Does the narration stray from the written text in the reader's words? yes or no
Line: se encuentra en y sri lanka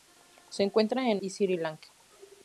no